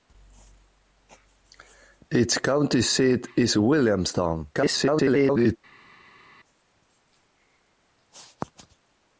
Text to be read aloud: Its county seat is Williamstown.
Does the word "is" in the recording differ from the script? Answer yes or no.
no